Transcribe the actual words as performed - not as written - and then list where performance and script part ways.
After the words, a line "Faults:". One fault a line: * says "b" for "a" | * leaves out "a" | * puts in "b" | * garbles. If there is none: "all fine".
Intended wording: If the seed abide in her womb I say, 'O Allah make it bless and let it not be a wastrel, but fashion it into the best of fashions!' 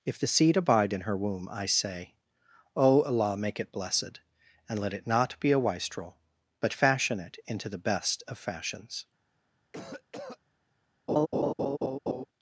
If the seed abide in her womb I say, 'O Allah make it blessed and let it not be a wastrel, but fashion it into the best of fashions!'
Faults:
* says "blessed" for "bless"